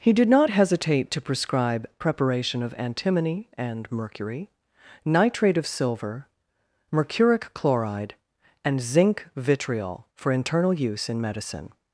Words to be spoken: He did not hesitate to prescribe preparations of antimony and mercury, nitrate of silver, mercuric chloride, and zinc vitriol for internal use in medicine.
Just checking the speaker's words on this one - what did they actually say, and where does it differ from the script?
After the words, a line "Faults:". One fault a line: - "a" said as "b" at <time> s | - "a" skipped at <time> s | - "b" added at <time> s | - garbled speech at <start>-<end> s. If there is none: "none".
He did not hesitate to prescribe preparation of antimony and mercury, nitrate of silver, mercuric chloride, and zinc vitriol for internal use in medicine.
Faults:
- "preparations" said as "preparation" at 2.0 s